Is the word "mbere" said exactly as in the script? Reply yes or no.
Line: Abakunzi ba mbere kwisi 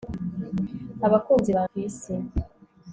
no